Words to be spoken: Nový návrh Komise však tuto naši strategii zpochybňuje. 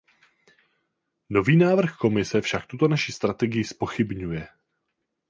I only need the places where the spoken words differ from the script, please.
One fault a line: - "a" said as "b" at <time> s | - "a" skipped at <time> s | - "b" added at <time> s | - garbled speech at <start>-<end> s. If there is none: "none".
none